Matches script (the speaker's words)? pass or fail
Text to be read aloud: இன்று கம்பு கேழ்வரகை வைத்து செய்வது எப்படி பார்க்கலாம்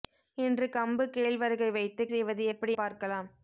pass